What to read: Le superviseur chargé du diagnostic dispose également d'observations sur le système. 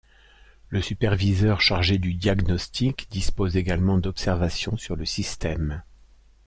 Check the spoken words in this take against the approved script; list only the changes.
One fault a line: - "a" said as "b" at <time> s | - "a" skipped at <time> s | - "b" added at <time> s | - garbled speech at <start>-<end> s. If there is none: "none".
none